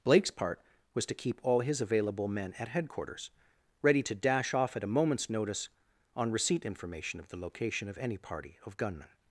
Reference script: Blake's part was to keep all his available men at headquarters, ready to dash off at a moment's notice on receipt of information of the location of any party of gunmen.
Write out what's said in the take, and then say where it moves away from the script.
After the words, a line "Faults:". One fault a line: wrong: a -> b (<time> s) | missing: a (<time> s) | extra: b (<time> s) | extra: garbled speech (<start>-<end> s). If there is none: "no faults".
Blake's part was to keep all his available men at headquarters, ready to dash off at a moment's notice on receipt information of the location of any party of gunmen.
Faults:
missing: of (6.7 s)